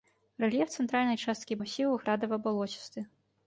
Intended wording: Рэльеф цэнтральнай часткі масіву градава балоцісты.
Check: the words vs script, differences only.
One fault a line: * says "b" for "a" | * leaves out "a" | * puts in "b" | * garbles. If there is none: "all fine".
all fine